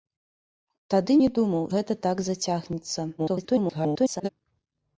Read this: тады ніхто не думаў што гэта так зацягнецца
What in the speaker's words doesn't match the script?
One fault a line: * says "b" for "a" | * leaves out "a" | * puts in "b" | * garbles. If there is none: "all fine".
* leaves out "ніхто"
* leaves out "што"
* garbles